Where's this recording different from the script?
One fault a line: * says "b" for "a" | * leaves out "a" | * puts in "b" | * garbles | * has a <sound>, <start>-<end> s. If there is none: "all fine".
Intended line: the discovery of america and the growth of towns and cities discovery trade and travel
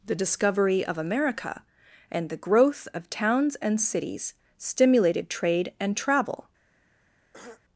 * says "stimulated" for "discovery"
* has a throat clearing, 7.3-7.6 s